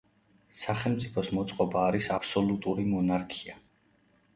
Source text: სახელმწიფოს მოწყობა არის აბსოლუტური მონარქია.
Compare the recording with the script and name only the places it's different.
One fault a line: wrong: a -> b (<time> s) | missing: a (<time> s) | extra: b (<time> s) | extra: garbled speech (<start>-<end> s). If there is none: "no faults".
no faults